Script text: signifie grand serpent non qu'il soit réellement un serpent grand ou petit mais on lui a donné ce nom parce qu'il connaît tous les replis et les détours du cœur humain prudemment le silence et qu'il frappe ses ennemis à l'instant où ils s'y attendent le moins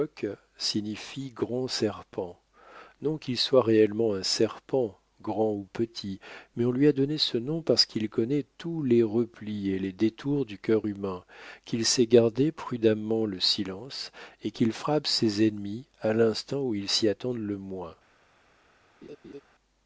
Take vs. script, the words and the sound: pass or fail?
fail